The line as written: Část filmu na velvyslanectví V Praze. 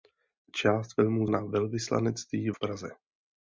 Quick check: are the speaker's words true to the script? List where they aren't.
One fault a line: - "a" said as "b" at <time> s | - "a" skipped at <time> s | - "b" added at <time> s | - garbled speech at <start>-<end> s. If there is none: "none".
none